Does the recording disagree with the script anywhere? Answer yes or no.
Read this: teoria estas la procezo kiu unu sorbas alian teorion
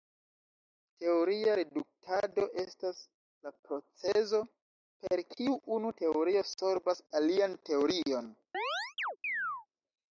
yes